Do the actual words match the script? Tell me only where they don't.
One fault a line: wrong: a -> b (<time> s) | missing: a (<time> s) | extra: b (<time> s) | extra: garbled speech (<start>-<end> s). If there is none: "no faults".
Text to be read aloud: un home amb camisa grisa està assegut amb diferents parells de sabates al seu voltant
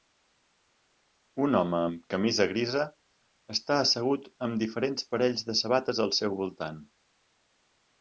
no faults